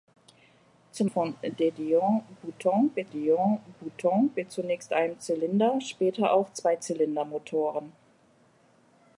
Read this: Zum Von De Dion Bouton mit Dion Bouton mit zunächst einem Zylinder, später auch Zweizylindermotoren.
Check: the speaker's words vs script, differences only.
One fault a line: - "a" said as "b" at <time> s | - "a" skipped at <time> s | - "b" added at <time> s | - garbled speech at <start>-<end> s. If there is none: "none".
none